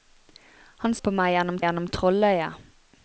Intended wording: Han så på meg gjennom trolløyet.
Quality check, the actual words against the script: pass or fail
fail